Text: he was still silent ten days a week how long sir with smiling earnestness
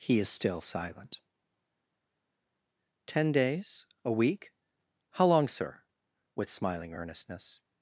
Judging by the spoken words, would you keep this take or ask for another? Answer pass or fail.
fail